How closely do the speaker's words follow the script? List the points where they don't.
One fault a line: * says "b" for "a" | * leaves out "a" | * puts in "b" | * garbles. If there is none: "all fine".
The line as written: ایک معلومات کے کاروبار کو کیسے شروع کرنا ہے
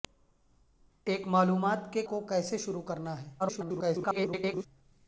* leaves out "کاروبار"
* garbles